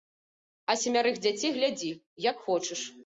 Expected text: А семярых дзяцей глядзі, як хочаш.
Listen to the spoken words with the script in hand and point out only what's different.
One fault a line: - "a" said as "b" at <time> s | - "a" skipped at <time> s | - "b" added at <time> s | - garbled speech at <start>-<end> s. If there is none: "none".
none